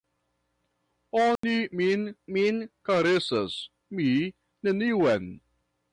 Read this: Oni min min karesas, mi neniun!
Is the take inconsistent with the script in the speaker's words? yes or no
no